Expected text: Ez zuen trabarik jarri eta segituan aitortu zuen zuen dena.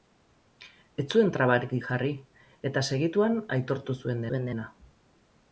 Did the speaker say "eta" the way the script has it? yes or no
yes